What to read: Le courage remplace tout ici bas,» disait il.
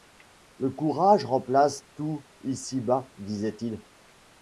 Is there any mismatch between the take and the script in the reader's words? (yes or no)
no